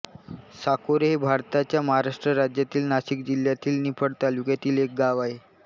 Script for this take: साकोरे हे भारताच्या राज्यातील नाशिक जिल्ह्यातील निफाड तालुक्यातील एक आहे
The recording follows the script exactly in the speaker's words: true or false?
false